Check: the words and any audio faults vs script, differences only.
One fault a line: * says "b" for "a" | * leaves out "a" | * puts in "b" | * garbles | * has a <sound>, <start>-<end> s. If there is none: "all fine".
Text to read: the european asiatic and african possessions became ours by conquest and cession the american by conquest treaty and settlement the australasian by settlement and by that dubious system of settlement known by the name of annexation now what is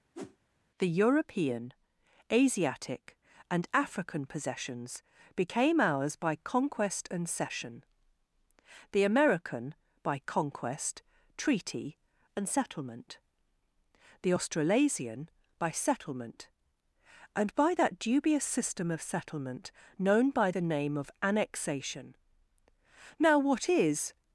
* has a whoosh, 0.1-0.4 s